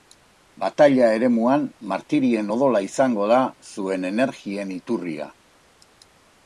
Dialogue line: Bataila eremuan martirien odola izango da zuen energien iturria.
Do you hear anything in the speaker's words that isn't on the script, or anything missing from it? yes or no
no